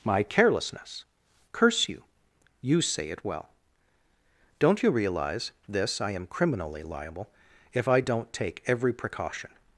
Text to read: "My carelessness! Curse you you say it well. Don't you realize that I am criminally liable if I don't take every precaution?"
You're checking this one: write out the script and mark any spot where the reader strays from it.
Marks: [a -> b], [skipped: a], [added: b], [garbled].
"My carelessness! Curse you you say it well. Don't you realize [that -> this] I am criminally liable if I don't take every precaution?"